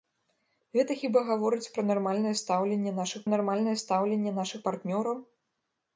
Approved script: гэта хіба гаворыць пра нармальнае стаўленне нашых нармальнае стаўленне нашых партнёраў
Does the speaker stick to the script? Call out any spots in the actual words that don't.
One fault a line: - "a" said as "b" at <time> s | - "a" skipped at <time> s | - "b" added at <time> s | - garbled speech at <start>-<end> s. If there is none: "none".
none